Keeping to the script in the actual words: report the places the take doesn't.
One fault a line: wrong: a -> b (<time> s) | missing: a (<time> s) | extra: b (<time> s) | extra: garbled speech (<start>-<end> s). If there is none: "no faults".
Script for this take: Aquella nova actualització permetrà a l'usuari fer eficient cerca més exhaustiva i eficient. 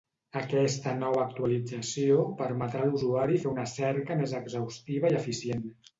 wrong: Aquella -> Aquesta (0.4 s)
wrong: eficient -> una (3.5 s)